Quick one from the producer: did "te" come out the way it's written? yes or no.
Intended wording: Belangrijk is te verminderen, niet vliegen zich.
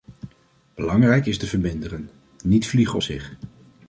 yes